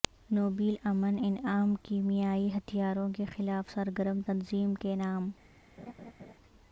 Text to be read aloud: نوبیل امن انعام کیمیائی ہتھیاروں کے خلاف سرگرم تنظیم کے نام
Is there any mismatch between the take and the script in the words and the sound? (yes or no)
yes